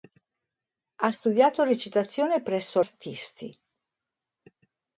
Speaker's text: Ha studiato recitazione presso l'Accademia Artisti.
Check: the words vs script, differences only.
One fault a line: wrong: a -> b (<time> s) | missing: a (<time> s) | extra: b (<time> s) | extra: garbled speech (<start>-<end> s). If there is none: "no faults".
missing: l'Accademia (2.8 s)